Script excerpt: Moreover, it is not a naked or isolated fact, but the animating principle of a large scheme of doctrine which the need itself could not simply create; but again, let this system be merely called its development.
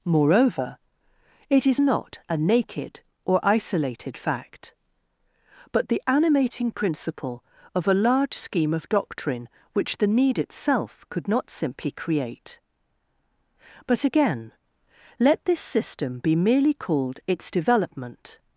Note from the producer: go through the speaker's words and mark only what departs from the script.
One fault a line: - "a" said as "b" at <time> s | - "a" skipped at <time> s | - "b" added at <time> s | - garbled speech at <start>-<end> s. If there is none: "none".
none